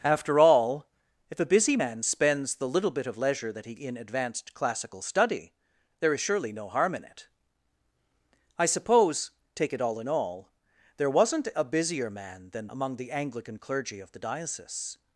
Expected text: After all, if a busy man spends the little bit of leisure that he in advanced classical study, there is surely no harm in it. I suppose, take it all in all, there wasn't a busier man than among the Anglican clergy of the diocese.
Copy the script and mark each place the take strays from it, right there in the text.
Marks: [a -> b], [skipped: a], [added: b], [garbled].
After all, if a busy man spends the little bit of leisure that he in advanced classical study, there is surely no harm in it. I suppose, take it all in all, there wasn't a busier man than among the Anglican clergy of the diocese.